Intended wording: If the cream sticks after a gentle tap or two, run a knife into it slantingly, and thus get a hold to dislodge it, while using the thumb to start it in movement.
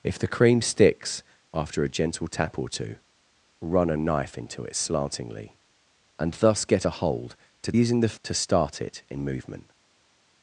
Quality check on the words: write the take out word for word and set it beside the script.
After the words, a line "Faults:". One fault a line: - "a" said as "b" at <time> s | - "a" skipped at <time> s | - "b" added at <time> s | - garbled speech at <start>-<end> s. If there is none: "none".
If the cream sticks after a gentle tap or two, run a knife into it slantingly, and thus get a hold to using the to start it in movement.
Faults:
- "dislodge it while" skipped at 7.7 s
- "thumb" skipped at 8.1 s